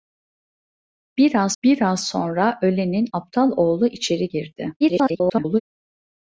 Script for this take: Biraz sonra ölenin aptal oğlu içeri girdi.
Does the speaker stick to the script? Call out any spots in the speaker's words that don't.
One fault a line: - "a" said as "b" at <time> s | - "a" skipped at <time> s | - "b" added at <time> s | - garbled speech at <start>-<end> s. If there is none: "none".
- "biraz" added at 1.6 s
- garbled speech at 4.8-5.6 s